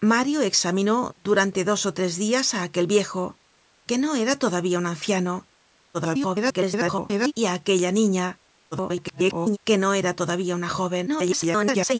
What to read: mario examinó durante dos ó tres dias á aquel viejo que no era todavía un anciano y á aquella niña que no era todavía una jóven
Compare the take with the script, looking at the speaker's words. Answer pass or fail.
fail